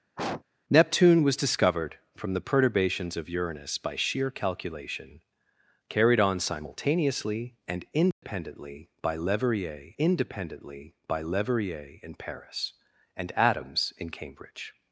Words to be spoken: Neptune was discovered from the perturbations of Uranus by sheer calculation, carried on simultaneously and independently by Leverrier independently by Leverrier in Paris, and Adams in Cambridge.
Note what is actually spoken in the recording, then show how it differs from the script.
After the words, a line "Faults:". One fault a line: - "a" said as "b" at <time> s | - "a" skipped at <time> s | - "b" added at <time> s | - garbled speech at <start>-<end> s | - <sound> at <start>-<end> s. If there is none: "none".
Neptune was discovered from the perturbations of Uranus by sheer calculation, carried on simultaneously and independently by Leverrier independently by Leverrier in Paris, and Adams in Cambridge.
Faults:
- sniff at 0.2-0.4 s
- dropout at 8.1-8.2 s